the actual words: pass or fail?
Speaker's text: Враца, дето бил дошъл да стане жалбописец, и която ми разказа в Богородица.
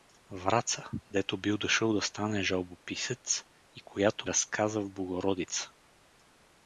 fail